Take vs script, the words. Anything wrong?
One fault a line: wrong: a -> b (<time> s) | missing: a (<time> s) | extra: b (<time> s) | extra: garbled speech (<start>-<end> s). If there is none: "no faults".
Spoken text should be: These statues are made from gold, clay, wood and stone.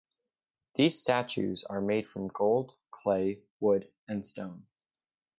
no faults